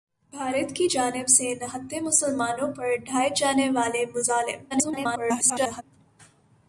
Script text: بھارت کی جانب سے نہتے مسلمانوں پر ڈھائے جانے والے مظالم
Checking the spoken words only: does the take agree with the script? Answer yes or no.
no